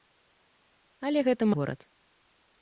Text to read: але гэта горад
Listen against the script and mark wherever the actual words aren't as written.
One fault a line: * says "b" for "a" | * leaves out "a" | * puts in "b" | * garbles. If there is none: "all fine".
all fine